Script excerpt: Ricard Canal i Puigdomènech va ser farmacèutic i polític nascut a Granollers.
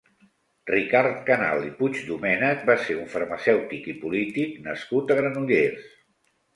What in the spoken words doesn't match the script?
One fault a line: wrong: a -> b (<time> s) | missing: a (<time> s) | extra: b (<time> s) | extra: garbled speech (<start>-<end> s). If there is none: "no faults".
extra: un (3.0 s)